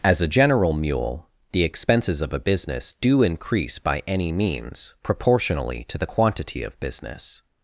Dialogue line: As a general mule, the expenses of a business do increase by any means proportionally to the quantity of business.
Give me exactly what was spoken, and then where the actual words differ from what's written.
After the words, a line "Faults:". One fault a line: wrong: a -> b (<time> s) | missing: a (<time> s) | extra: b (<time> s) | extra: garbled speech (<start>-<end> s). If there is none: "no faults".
As a general mule, the expenses of a business do increase by any means proportionally to the quantity of business.
Faults:
no faults